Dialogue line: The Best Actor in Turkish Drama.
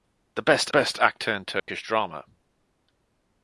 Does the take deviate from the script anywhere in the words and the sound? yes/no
yes